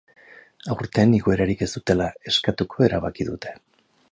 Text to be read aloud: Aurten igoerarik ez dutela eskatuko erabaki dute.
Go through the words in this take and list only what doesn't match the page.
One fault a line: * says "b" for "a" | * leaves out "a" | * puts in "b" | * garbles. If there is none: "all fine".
all fine